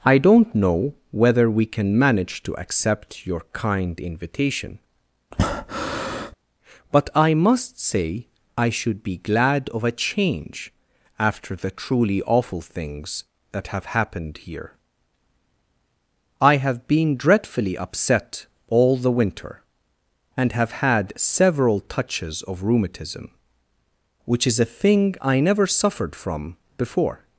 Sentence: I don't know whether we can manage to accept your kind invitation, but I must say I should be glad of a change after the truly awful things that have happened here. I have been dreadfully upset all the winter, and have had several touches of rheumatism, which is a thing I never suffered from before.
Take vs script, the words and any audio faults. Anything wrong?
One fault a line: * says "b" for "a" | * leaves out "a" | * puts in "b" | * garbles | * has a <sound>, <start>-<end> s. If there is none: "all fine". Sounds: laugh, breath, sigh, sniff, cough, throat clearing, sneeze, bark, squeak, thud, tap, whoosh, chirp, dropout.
* has a breath, 5.3-6.3 s